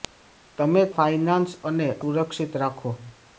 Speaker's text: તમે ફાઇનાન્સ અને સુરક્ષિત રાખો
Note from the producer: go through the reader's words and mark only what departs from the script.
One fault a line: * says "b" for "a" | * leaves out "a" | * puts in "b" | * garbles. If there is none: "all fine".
all fine